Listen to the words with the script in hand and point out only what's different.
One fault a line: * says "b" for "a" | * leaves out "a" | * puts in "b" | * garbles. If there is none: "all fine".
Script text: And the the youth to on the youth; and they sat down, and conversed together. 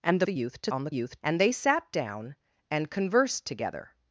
all fine